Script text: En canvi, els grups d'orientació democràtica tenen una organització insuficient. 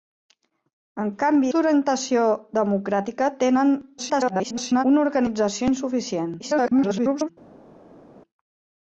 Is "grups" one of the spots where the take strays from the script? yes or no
yes